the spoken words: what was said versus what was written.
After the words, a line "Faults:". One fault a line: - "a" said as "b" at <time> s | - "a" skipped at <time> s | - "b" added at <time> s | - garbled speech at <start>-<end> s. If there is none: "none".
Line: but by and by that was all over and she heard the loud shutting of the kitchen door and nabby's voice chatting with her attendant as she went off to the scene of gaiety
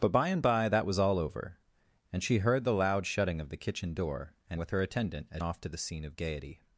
but by and by that was all over and she heard the loud shutting of the kitchen door and with her attendant as off to the scene of gaiety
Faults:
- "nabby's voice chatting" skipped at 4.6 s
- "she went" skipped at 5.4 s